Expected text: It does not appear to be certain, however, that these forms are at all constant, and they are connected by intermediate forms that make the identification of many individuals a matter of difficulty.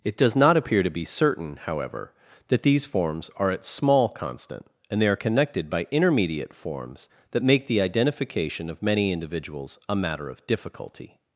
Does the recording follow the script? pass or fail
fail